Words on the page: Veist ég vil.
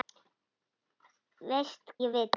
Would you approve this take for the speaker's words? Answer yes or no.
yes